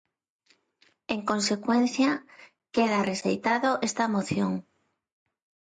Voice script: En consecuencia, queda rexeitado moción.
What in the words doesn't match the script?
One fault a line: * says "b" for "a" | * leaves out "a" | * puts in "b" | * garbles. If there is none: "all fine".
* puts in "esta"